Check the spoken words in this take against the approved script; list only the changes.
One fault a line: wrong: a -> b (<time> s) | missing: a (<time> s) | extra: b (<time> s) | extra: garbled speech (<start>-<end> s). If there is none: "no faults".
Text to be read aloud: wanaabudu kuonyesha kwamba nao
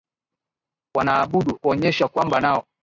no faults